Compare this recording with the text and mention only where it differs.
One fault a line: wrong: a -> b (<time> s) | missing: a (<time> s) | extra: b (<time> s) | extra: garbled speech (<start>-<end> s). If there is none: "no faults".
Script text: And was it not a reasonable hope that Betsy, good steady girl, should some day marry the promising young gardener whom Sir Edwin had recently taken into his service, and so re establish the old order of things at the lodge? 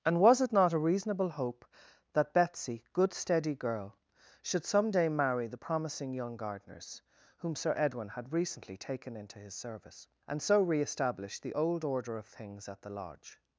wrong: gardener -> gardeners (6.4 s)